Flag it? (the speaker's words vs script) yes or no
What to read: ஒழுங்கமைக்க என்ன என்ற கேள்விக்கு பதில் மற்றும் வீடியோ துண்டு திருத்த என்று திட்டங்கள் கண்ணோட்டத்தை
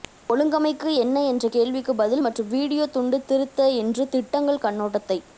no